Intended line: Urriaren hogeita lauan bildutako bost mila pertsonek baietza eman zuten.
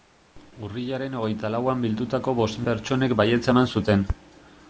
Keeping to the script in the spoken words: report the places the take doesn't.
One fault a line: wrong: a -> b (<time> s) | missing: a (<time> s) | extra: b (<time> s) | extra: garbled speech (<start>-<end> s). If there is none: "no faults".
missing: mila (2.6 s)